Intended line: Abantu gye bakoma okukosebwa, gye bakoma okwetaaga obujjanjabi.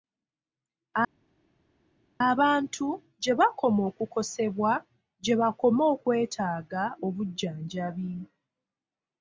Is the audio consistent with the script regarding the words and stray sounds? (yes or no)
yes